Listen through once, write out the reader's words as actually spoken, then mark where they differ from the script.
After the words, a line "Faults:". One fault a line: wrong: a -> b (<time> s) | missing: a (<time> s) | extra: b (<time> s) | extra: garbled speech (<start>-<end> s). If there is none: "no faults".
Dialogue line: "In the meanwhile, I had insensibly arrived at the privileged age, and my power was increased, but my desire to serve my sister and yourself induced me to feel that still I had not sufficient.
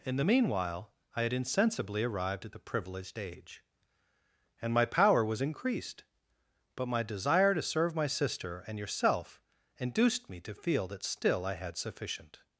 "In the meanwhile, I had insensibly arrived at the privileged age, and my power was increased, but my desire to serve my sister and yourself induced me to feel that still I had sufficient.
Faults:
missing: not (11.8 s)